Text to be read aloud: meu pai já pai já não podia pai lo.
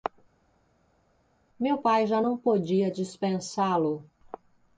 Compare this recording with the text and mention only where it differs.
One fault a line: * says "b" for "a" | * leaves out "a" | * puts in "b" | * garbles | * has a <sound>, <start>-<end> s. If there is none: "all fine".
* leaves out "pai já"
* says "dispensá" for "pai"